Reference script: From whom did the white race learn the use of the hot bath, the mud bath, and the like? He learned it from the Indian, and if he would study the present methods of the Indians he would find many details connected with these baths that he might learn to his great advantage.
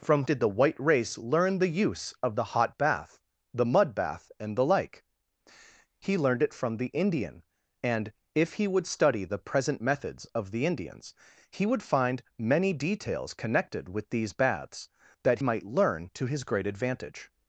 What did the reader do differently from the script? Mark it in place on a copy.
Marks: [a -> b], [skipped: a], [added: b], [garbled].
From [skipped: whom] did the white race learn the use of the hot bath, the mud bath, and the like? He learned it from the Indian, and if he would study the present methods of the Indians he would find many details connected with these baths that [skipped: he] might learn to his great advantage.